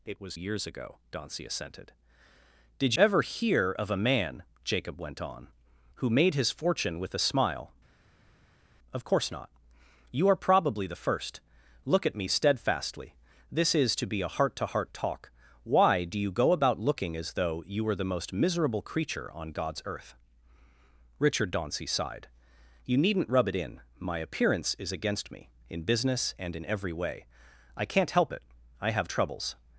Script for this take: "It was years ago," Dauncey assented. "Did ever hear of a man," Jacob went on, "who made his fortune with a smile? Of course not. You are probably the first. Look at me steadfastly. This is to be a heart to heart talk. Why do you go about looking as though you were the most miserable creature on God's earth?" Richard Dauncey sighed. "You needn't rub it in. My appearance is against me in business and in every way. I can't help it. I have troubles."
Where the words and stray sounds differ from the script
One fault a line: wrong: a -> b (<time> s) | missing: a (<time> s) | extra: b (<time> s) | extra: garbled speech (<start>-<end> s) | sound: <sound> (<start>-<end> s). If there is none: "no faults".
no faults